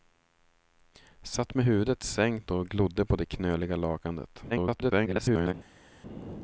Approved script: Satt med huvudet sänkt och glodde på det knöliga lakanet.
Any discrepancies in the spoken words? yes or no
yes